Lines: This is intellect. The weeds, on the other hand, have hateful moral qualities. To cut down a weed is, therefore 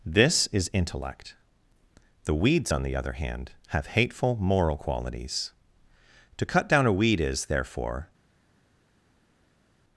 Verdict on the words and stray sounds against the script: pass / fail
pass